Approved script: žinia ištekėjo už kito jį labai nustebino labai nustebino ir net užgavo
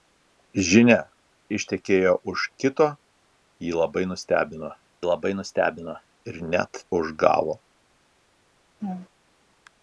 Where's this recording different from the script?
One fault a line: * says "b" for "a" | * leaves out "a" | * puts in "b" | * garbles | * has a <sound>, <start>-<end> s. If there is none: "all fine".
* has a laugh, 8.8-9.1 s